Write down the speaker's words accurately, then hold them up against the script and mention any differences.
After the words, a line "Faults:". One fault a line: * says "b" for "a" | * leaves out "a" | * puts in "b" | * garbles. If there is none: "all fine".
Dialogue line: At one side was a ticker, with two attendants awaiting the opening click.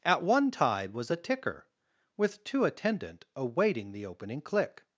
At one tide was a ticker, with two attendant awaiting the opening click.
Faults:
* says "tide" for "side"
* says "attendant" for "attendants"